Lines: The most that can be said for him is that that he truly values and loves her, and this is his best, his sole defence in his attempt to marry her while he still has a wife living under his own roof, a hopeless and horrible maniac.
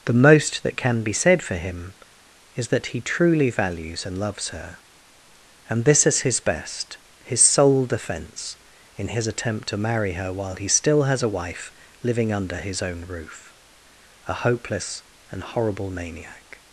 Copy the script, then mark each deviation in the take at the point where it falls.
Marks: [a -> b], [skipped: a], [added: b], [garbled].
The most that can be said for him is that [skipped: that] he truly values and loves her, and this is his best, his sole defence in his attempt to marry her while he still has a wife living under his own roof, a hopeless and horrible maniac.